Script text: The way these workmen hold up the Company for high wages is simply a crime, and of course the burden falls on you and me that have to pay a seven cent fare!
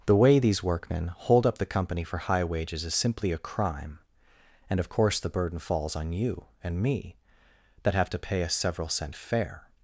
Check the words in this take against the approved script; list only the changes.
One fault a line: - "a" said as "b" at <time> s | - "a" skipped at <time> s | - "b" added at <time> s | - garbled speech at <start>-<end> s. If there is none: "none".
- "seven" said as "several" at 8.5 s